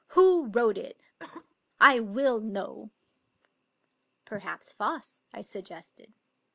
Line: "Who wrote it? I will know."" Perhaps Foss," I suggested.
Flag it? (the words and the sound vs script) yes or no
yes